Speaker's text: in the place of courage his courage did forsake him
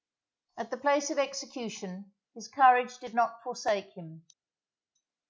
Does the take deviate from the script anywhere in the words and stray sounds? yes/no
yes